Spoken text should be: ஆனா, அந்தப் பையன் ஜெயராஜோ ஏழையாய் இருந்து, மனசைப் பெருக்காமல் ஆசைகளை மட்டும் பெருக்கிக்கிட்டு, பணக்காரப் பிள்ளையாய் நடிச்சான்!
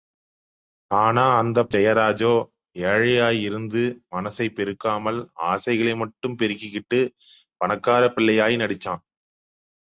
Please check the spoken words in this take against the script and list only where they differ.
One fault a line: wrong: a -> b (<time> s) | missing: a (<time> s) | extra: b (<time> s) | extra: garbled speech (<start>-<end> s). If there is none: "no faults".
missing: பையன் (1.7 s)